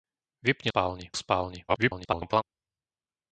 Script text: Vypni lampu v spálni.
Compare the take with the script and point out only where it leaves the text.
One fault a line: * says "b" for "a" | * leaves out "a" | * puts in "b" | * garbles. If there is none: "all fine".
* says "spálni" for "lampu"
* garbles